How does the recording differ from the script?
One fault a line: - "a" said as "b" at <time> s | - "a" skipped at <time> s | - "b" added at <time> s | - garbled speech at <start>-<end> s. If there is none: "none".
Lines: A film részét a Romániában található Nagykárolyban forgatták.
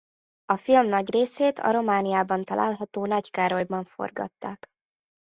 - "nagy" added at 0.9 s